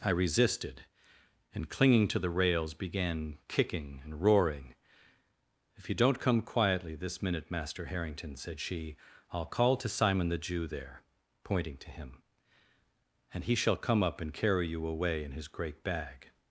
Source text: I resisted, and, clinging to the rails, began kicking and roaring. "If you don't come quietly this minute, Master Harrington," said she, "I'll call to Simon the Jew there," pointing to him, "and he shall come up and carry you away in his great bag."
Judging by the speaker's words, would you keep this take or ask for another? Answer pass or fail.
pass